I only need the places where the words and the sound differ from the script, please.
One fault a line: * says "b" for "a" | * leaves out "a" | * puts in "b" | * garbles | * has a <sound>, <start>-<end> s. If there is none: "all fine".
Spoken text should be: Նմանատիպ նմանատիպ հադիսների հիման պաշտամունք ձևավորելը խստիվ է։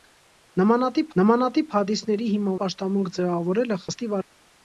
all fine